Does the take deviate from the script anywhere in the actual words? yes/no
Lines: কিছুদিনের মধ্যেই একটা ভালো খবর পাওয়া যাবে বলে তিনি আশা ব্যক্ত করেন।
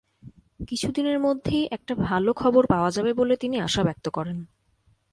no